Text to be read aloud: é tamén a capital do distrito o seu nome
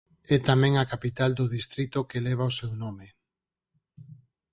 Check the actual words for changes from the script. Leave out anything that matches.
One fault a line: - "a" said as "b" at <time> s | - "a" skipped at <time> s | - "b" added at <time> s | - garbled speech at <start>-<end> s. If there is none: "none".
- "que leva" added at 2.1 s